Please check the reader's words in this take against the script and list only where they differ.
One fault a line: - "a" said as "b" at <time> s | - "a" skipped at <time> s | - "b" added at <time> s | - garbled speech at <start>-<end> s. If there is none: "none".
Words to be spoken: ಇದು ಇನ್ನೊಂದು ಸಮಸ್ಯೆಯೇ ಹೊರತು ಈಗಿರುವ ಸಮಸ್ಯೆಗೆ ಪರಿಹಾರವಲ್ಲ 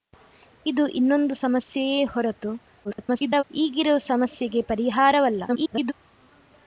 - garbled speech at 2.8-3.4 s
- garbled speech at 5.5-5.9 s